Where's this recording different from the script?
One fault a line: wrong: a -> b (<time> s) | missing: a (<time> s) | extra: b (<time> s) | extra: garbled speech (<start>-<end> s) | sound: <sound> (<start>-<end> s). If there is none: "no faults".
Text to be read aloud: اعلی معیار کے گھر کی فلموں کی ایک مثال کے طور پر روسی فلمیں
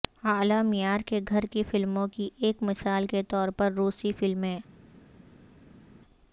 no faults